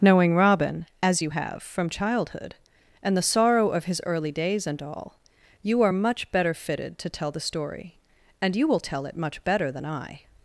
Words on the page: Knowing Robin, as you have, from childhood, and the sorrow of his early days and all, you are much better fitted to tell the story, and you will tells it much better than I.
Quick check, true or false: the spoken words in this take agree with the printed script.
false